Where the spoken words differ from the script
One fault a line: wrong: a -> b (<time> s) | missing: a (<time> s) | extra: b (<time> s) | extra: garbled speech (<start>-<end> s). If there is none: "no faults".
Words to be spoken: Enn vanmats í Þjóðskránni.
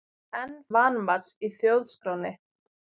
no faults